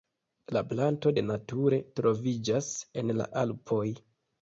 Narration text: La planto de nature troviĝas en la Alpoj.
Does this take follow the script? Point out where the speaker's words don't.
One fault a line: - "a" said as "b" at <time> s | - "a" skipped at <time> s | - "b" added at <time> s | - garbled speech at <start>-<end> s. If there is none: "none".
none